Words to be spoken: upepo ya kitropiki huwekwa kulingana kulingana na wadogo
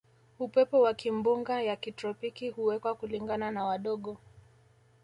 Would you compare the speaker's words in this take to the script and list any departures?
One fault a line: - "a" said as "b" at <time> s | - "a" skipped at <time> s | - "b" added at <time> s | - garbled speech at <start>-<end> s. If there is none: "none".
- "wa kimbunga" added at 0.8 s
- "kulingana" skipped at 3.5 s